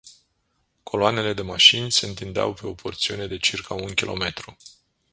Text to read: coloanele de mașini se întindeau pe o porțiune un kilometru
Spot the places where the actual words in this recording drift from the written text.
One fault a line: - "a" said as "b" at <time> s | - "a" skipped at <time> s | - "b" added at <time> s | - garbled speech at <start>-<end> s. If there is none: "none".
- "de circa" added at 3.3 s